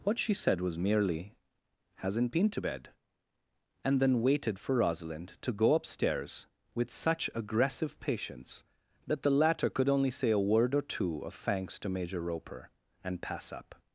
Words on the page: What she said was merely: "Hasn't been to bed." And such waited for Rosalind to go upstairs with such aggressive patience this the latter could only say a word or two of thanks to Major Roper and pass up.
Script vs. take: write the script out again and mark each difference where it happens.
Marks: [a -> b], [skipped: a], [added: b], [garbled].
What she said was merely: "Hasn't been to bed." And [such -> then] waited for Rosalind to go upstairs with such aggressive patience [this -> that] the latter could only say a word or two of thanks to Major Roper and pass up.